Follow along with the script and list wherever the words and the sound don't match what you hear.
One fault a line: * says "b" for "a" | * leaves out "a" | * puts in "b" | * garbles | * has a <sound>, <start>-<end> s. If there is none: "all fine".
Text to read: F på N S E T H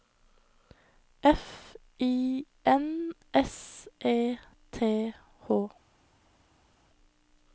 * says "I" for "på"